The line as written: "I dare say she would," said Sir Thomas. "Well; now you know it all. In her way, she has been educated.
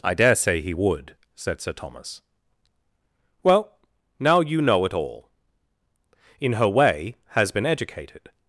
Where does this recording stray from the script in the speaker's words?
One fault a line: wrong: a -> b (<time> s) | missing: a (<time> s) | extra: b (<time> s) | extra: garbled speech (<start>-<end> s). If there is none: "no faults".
wrong: she -> he (0.6 s)
missing: she (7.2 s)